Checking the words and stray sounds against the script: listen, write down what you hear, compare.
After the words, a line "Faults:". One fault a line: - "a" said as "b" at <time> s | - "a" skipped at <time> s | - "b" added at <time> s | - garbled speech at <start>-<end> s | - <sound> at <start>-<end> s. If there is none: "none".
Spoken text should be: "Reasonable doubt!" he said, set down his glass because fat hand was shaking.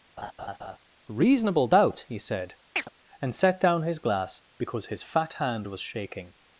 "Reasonable doubt!" he said, and set down his glass because his fat hand was shaking.
Faults:
- laugh at 0.2-0.8 s
- chirp at 2.8-2.9 s
- "and" added at 3.2 s
- "his" added at 4.9 s